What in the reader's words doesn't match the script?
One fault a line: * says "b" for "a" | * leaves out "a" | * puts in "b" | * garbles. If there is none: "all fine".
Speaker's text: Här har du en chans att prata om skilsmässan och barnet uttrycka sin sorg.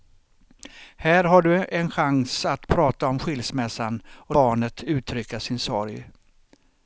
all fine